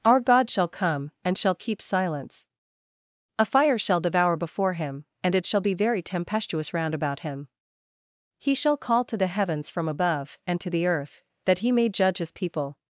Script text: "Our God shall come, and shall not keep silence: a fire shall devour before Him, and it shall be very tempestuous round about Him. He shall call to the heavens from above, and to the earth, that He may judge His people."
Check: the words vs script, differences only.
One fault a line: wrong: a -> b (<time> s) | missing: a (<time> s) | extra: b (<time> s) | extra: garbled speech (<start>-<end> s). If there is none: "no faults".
missing: not (1.5 s)